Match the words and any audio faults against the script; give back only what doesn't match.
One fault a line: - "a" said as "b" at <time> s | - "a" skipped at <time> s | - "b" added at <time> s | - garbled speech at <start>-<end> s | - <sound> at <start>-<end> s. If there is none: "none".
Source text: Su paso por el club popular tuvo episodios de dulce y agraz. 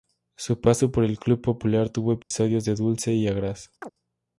- dropout at 2.2-2.3 s
- chirp at 3.8-3.9 s